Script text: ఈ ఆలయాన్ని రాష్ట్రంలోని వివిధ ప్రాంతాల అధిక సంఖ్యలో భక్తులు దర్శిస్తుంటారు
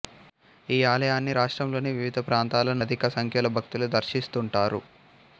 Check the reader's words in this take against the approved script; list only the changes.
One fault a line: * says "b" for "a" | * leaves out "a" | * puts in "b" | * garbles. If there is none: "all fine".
all fine